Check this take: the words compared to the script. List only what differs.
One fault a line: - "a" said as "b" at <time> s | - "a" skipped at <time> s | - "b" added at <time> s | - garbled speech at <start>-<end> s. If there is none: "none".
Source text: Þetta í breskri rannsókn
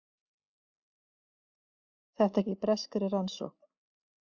none